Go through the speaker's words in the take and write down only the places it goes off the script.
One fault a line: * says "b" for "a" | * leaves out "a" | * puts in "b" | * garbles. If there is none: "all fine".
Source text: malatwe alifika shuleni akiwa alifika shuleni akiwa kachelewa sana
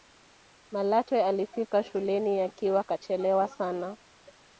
* leaves out "alifika shuleni akiwa"